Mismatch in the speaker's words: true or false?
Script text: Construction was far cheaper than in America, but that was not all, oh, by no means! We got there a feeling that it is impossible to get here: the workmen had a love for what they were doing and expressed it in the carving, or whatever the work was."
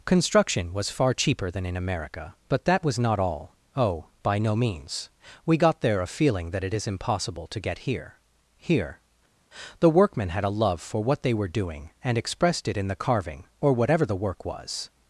true